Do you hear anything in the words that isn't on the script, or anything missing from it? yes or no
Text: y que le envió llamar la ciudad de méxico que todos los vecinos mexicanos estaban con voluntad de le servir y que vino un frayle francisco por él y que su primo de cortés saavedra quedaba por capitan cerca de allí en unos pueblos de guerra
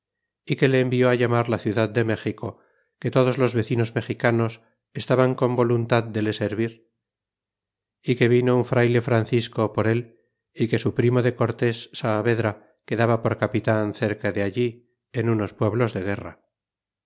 no